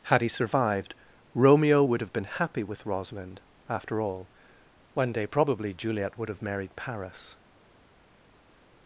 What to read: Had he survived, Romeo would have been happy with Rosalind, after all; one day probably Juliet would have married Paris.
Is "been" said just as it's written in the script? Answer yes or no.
yes